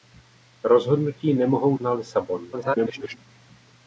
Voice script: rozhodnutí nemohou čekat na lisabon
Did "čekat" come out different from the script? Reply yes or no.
yes